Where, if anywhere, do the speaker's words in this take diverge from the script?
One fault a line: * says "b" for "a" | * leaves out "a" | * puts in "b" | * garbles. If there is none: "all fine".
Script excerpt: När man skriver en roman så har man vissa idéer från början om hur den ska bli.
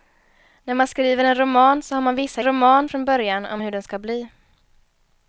* says "roman" for "idéer"